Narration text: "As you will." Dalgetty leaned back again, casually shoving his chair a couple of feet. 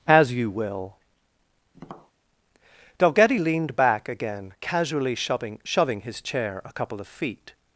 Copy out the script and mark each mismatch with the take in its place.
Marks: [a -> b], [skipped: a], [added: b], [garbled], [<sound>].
"As you will." [tap] Dalgetty leaned back again, casually shoving [added: shoving] his chair a couple of feet.